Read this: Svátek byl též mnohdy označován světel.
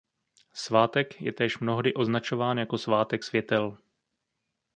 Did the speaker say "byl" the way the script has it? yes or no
no